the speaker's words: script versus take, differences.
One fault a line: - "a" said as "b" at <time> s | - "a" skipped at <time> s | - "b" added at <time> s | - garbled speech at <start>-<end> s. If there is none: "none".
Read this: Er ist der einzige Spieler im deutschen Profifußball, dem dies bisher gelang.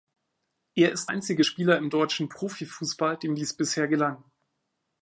- "der" skipped at 1.1 s